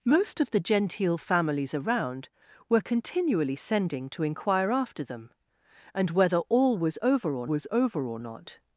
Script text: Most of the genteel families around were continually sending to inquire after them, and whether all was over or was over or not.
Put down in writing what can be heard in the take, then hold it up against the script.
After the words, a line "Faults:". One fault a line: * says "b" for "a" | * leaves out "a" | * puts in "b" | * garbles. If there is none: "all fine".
Most of the genteel families around were continually sending to inquire after them, and whether all was over or was over or not.
Faults:
all fine